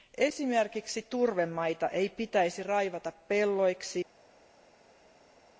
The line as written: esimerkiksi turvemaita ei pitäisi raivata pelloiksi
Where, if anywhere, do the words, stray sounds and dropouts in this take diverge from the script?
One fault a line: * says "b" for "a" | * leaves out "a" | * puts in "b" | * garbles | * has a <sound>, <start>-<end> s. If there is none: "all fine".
all fine